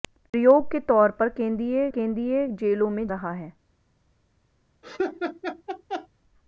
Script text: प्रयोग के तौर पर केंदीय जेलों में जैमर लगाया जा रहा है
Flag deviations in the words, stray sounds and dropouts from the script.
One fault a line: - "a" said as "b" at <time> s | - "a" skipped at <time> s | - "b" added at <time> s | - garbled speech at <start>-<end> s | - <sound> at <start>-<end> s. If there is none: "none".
- "केंदीय" added at 1.9 s
- "जैमर लगाया जा" skipped at 3.1 s
- laugh at 4.8-6.1 s